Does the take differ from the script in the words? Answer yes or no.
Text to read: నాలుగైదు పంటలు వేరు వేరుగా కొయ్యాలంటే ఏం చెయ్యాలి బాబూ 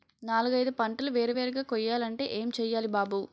no